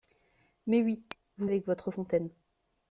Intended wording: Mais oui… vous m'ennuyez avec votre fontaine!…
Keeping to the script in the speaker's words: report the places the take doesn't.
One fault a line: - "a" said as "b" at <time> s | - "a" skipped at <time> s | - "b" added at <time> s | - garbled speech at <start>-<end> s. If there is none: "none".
- "m'ennuyez" skipped at 1.5 s